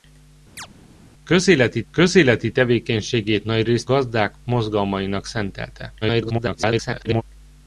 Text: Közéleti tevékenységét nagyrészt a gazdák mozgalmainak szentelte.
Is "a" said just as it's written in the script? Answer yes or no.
no